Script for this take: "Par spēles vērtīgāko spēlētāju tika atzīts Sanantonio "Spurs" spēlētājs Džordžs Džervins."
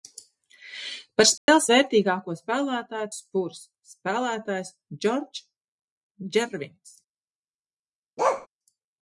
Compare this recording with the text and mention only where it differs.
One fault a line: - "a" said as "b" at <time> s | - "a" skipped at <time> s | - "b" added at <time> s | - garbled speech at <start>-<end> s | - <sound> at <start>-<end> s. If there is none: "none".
- dropout at 1.4-1.5 s
- "tika atzīts Sanantonio" skipped at 3.1 s
- bark at 8.2-8.5 s